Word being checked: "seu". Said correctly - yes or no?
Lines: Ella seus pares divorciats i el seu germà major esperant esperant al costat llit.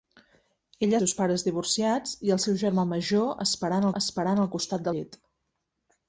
yes